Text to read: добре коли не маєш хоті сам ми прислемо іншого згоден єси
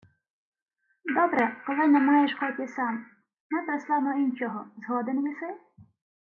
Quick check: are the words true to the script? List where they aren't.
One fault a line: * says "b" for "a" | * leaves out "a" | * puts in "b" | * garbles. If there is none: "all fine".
all fine